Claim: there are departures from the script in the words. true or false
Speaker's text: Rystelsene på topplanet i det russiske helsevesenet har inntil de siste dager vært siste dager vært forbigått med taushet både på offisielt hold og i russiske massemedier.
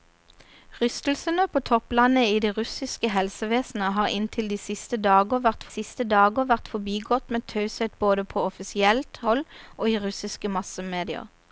false